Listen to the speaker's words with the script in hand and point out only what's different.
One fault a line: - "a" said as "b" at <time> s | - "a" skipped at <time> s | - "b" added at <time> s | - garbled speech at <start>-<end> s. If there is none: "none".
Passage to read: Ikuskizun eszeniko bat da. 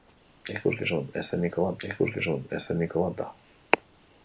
- "ikuskizun eszeniko bat" added at 1.9 s